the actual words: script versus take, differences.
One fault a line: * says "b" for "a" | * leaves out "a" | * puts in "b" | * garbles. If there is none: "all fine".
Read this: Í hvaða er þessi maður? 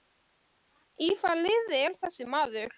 * puts in "liði"